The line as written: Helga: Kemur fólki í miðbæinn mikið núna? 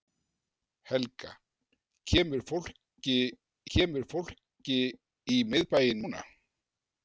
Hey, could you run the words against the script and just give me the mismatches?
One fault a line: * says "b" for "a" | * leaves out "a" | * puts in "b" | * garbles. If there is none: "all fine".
* puts in "Kemur fólki"
* leaves out "mikið"